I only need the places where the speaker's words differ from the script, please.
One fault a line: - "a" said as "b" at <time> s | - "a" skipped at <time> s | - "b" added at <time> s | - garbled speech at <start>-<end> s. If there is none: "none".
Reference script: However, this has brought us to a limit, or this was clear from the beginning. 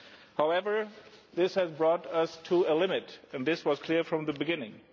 - "or" said as "and" at 3.3 s